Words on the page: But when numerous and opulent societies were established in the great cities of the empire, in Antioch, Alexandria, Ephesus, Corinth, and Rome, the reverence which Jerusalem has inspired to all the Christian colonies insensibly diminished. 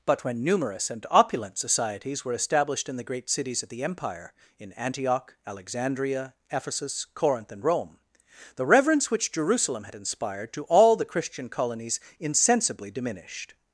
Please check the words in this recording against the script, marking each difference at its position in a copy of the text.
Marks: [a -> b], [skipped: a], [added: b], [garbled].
But when numerous and opulent societies were established in the great cities of the empire, in Antioch, Alexandria, Ephesus, Corinth, and Rome, the reverence which Jerusalem [has -> had] inspired to all the Christian colonies insensibly diminished.